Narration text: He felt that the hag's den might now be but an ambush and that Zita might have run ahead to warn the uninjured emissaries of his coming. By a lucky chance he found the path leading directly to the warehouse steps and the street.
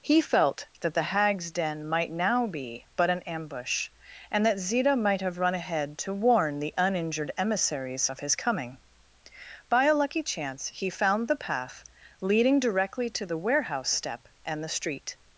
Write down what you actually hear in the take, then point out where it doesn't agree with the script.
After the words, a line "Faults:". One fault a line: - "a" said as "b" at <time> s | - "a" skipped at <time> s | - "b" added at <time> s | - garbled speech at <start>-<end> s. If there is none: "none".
He felt that the hag's den might now be but an ambush and that Zita might have run ahead to warn the uninjured emissaries of his coming. By a lucky chance he found the path leading directly to the warehouse step and the street.
Faults:
- "steps" said as "step" at 13.9 s